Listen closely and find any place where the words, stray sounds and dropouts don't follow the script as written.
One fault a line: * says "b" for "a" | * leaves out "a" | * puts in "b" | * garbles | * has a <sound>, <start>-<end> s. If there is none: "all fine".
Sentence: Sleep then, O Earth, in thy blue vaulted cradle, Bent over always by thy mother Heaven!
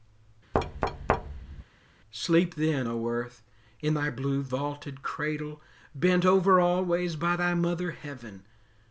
* has a thud, 0.5-1.6 s